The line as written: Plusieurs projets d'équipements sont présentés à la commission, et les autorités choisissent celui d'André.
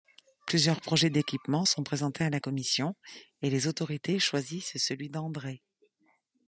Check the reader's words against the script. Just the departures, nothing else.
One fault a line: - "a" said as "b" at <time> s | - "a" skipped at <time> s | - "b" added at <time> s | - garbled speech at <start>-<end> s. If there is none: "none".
none